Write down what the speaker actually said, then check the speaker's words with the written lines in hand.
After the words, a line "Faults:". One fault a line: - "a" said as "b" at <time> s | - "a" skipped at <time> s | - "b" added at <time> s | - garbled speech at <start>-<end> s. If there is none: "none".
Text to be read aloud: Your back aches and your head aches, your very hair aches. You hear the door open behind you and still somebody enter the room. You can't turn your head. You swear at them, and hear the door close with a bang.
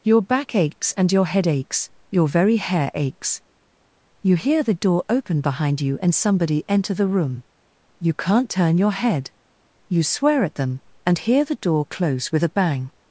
Your back aches and your head aches, your very hair aches. You hear the door open behind you and somebody enter the room. You can't turn your head. You swear at them, and hear the door close with a bang.
Faults:
- "still" skipped at 6.2 s